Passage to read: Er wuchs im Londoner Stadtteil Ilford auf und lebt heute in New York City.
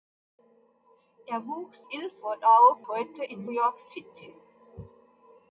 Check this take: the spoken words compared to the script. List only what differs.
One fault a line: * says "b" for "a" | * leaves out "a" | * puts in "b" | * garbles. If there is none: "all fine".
* leaves out "im Londoner Stadtteil"
* leaves out "und lebt"
* leaves out "New"